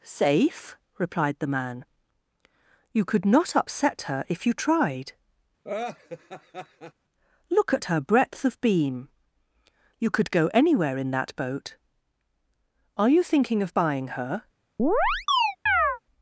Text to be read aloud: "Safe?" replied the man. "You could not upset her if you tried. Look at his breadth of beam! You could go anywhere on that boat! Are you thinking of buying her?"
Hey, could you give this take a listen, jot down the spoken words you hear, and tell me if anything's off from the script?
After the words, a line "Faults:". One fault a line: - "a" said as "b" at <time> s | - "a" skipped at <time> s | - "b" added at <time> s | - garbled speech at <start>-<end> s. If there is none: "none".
"Safe?" replied the man. "You could not upset her if you tried. Look at her breadth of beam! You could go anywhere in that boat! Are you thinking of buying her?"
Faults:
- "his" said as "her" at 7.8 s
- "on" said as "in" at 11.0 s